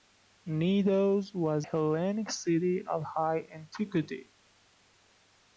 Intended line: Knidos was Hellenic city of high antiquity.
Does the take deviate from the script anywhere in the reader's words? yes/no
no